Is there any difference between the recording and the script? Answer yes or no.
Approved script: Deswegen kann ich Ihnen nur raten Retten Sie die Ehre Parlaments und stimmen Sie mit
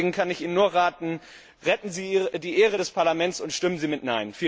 yes